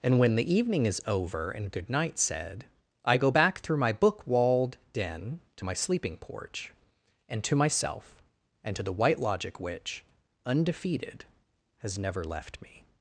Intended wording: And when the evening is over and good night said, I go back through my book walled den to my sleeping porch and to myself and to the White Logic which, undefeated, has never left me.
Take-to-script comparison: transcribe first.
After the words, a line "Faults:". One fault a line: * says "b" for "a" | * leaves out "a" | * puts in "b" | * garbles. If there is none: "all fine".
And when the evening is over and good night said, I go back through my book walled den to my sleeping porch and to myself and to the White Logic which, undefeated, has never left me.
Faults:
all fine